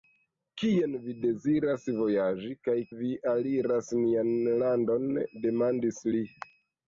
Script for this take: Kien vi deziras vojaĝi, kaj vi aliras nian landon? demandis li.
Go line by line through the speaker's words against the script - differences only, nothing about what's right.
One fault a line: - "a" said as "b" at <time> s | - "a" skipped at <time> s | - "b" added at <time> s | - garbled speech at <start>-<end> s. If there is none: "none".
none